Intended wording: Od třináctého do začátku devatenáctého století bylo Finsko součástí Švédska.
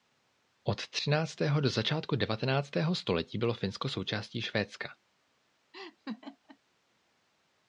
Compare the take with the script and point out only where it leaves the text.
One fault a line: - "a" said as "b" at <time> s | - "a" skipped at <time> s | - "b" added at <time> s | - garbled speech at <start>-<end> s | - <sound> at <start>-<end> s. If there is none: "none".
- laugh at 5.7-6.6 s